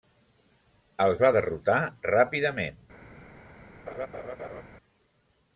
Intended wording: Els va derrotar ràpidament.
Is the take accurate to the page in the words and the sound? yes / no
no